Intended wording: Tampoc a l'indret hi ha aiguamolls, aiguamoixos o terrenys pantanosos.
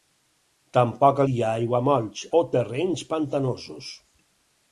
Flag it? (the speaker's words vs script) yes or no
yes